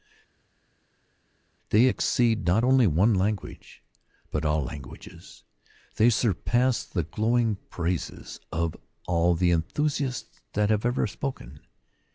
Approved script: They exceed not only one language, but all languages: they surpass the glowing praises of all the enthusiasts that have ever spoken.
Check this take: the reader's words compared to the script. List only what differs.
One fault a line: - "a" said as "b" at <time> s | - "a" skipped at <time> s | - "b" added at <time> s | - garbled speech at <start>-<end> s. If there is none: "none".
none